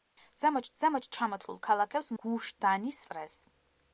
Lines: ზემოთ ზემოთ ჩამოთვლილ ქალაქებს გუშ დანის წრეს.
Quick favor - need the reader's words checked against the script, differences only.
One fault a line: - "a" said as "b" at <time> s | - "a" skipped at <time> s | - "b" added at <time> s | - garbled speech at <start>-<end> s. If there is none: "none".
none